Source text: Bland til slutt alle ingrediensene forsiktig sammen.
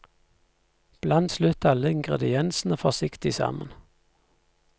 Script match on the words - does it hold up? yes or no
no